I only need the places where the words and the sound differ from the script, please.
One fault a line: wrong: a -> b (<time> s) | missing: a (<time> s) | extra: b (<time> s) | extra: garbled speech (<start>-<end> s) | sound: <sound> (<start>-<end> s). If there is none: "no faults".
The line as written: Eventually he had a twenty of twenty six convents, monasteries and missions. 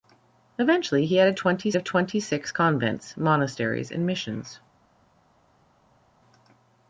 no faults